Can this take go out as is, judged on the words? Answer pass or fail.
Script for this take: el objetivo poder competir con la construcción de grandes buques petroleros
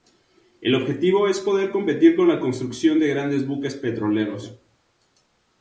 fail